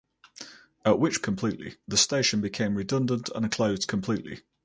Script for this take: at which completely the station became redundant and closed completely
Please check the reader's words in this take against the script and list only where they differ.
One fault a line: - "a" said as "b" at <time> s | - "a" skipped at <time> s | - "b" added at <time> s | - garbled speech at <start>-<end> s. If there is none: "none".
none